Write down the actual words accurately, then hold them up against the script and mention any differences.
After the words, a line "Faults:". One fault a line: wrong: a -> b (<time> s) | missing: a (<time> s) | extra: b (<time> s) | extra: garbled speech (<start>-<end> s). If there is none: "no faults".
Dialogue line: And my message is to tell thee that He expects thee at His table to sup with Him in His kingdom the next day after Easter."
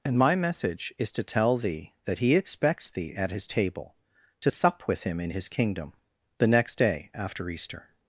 And my message is to tell thee that He expects thee at His table to sup with Him in His kingdom the next day after Easter."
Faults:
no faults